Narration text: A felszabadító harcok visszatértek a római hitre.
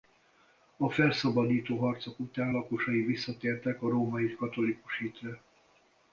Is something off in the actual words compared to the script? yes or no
yes